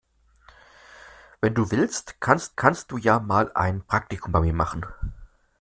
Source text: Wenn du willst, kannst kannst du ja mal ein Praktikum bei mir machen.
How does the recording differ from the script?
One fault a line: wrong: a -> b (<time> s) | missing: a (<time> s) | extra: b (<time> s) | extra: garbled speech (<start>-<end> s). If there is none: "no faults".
no faults